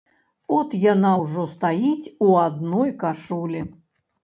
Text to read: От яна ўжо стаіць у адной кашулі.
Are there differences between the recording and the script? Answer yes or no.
no